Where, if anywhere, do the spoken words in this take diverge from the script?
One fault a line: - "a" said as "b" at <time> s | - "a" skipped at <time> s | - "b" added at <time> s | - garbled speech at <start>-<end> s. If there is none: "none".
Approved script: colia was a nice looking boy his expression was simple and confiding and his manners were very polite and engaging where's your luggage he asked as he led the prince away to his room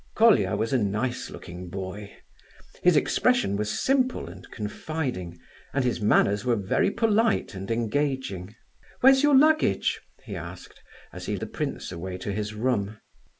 - "led" skipped at 11.3 s